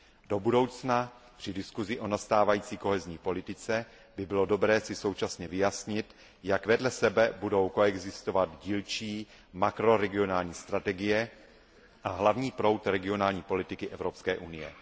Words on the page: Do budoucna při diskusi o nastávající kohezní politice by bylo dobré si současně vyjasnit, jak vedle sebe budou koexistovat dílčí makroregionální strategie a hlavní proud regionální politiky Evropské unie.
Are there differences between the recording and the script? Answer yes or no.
no